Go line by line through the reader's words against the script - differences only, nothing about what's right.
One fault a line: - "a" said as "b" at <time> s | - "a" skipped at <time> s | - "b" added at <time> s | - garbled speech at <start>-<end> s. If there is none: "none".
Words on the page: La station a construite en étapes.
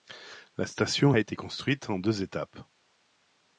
- "été" added at 1.2 s
- "deux" added at 2.0 s